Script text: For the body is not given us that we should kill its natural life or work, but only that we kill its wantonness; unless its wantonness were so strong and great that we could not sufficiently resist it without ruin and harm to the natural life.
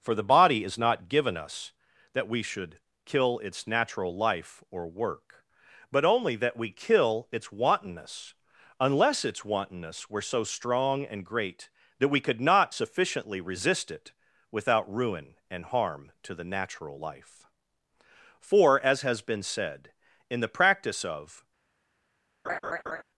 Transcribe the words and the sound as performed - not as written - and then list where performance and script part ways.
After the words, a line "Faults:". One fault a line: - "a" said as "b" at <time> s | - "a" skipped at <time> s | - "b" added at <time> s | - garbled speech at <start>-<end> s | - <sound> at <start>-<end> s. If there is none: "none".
For the body is not given us that we should kill its natural life or work, but only that we kill its wantonness; unless its wantonness were so strong and great that we could not sufficiently resist it without ruin and harm to the natural life. For, as has been said, in the practice of
Faults:
- "For as has been said in the practice of" added at 18.4 s
- laugh at 22.4-23.0 s